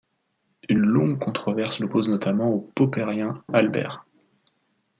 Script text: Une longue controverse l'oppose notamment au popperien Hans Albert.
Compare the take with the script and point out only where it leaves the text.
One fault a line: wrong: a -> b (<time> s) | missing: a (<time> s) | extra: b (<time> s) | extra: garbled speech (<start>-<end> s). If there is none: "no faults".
missing: Hans (3.4 s)